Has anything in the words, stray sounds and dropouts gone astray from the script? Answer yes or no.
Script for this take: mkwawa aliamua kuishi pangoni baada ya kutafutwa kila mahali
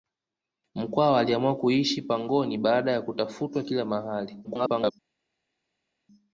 yes